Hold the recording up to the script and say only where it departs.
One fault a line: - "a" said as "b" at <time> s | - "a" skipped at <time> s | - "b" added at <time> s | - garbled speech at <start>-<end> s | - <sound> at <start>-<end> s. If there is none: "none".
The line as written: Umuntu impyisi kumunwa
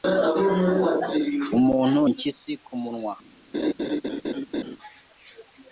- laugh at 3.5-4.8 s